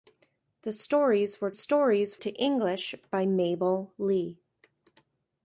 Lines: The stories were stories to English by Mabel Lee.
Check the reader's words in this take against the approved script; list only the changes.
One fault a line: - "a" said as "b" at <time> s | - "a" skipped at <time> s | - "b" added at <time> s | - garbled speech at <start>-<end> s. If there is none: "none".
none